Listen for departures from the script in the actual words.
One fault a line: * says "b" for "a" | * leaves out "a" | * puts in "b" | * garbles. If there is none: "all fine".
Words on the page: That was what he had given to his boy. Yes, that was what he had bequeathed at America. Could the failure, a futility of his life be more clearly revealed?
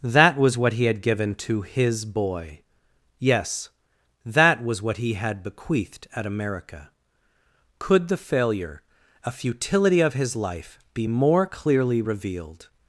all fine